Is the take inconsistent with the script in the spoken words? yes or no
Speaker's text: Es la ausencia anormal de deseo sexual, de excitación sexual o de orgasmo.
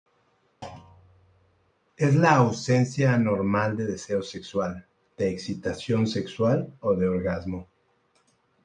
no